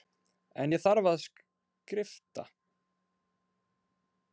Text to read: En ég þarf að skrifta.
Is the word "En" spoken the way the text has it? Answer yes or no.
yes